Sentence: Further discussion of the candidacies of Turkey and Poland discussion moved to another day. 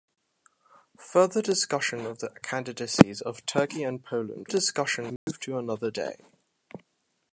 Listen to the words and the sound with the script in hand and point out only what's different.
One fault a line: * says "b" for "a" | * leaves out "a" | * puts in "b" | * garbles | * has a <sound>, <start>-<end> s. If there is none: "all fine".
* has a dropout, 5.2-5.3 s